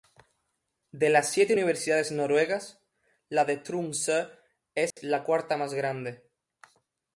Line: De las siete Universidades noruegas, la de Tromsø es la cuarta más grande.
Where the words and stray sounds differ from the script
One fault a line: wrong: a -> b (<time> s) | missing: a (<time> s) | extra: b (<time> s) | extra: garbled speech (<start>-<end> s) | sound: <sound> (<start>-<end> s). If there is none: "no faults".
sound: dropout (4.9-5.0 s)